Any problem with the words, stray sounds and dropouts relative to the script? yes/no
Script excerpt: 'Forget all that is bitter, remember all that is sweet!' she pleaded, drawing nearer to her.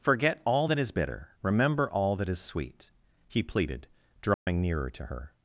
yes